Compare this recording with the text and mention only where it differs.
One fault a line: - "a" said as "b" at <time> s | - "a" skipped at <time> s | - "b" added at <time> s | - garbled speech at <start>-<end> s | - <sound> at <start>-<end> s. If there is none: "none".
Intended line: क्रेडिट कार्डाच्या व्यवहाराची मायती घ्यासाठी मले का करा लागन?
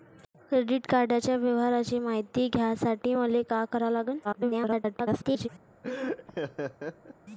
- garbled speech at 4.2-5.5 s
- laugh at 5.8-7.1 s